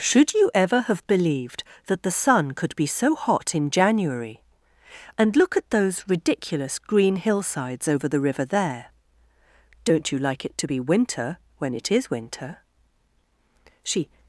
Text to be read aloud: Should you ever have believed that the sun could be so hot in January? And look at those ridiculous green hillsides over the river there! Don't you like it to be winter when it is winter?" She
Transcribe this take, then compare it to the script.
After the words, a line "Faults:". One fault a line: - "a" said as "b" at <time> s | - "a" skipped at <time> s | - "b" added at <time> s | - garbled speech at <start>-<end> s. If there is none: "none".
Should you ever have believed that the sun could be so hot in January? And look at those ridiculous green hillsides over the river there! Don't you like it to be winter when it is winter?" She
Faults:
none